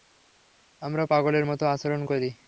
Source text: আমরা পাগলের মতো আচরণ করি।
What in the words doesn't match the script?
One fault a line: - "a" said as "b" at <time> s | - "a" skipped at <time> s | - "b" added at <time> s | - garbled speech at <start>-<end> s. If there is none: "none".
none